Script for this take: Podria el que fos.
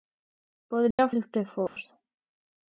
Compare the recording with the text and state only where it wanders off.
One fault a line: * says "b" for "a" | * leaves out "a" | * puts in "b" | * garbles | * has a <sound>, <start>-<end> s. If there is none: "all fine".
* has a dropout, 0.9-1.0 s
* has a dropout, 1.7-1.8 s